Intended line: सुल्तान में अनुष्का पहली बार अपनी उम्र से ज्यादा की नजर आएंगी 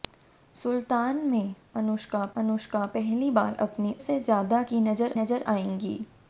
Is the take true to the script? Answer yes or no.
no